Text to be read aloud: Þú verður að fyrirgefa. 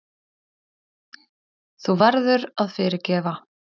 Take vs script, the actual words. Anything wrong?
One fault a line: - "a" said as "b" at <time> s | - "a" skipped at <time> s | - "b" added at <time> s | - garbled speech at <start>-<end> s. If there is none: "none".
none